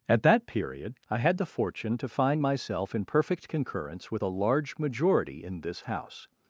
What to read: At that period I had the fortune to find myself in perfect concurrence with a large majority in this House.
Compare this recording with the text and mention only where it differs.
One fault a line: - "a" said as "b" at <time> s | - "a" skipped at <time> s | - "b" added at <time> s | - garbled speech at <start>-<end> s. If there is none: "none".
none